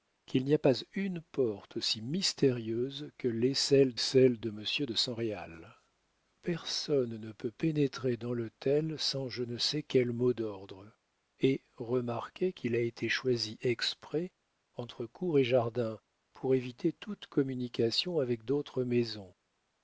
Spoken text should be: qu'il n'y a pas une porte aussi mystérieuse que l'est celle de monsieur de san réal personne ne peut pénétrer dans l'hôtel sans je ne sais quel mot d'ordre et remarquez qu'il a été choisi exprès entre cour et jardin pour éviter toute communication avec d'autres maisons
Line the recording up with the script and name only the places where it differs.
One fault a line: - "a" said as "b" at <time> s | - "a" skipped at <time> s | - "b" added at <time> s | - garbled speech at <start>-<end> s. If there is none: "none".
- "celle" added at 4.0 s